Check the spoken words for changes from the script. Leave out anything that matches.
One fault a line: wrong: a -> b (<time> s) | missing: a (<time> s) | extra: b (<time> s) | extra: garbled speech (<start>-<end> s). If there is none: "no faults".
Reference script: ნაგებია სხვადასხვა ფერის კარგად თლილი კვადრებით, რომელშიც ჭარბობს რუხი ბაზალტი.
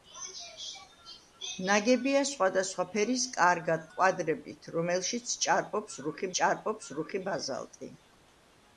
missing: თლილი (3.9 s)
extra: ჭარბობს რუხი (6.4 s)